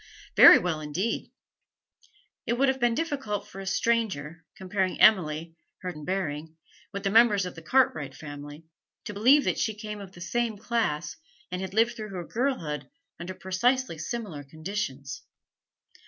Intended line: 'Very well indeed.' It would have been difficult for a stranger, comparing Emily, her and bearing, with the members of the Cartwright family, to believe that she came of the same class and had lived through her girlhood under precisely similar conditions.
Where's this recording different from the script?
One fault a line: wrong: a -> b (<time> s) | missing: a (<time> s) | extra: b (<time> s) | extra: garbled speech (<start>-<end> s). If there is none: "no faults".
no faults